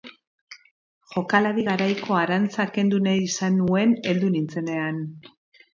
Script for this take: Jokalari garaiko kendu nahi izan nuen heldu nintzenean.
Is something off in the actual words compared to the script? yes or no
yes